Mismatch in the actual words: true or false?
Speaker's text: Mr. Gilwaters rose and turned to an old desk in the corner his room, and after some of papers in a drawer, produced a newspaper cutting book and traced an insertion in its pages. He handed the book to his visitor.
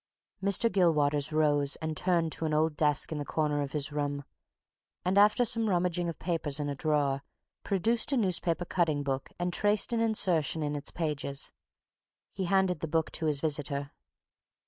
true